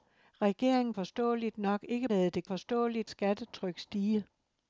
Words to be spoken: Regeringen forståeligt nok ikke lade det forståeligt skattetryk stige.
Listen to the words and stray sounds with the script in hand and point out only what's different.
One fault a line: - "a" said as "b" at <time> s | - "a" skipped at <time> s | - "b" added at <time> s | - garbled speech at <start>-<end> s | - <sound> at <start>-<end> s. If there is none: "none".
none